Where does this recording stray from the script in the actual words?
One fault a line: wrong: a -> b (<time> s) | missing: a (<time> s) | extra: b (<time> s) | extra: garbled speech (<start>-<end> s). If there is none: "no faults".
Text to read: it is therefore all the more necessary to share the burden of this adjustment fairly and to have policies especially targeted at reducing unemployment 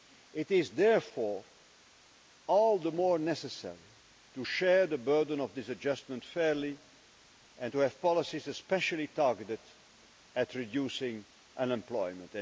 no faults